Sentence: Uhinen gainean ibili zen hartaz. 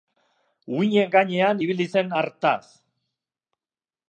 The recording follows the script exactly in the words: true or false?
true